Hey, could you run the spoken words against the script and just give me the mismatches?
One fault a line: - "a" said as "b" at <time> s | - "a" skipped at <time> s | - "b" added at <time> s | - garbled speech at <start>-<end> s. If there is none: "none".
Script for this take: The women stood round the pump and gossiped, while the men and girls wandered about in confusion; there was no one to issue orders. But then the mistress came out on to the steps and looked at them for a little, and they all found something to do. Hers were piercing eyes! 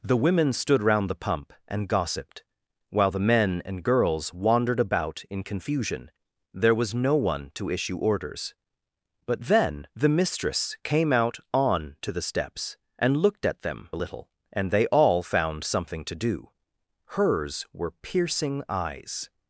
- "for" skipped at 13.9 s